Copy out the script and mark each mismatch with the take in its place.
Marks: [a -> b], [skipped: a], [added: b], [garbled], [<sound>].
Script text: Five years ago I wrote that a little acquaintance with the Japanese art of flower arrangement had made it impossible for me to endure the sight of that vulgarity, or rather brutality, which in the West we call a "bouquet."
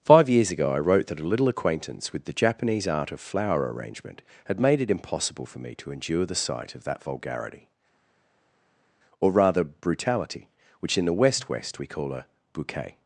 Five years ago I wrote that a little acquaintance with the Japanese art of flower arrangement had made it impossible for me to endure the sight of that vulgarity, or rather brutality, which in the West [added: West] we call a "bouquet."